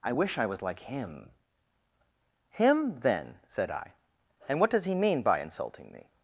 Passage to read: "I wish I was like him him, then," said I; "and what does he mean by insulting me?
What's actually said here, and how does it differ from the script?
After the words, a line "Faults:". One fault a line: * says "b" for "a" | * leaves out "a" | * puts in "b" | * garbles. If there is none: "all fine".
"I wish I was like him him, then," said I; "and what does he mean by insulting me?
Faults:
all fine